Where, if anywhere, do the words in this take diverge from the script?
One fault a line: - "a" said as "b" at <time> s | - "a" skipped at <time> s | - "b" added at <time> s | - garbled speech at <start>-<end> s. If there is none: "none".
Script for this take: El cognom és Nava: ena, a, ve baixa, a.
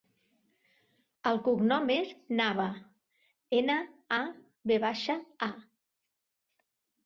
none